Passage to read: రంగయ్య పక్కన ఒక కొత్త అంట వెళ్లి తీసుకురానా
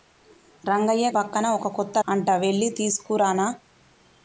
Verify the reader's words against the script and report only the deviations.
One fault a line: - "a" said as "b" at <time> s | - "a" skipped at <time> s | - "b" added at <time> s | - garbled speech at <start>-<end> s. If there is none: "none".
none